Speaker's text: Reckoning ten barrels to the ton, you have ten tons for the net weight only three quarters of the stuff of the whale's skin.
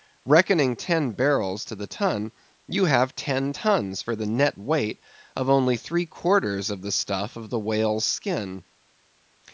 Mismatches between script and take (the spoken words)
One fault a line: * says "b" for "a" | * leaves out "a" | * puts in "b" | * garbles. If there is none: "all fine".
* puts in "of"